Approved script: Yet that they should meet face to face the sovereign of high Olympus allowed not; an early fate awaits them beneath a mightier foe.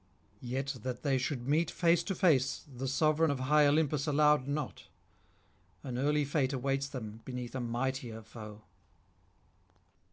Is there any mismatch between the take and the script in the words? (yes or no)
no